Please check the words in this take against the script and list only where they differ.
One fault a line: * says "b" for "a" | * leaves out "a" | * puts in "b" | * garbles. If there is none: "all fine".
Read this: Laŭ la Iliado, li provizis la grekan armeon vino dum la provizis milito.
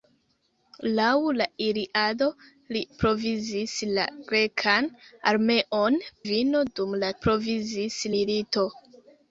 all fine